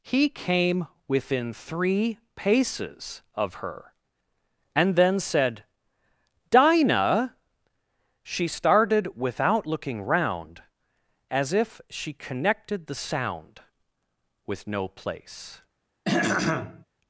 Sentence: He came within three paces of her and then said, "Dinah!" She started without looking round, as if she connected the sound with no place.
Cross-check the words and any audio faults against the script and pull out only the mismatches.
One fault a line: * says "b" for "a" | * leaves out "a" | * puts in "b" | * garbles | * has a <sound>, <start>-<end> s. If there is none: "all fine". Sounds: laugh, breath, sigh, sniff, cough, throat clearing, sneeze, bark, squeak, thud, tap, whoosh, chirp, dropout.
* has a throat clearing, 16.0-16.8 s